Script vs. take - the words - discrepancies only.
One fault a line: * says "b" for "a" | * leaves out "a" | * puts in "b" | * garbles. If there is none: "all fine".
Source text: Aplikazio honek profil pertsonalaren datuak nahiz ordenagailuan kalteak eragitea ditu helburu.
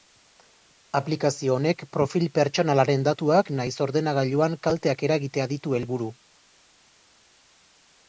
all fine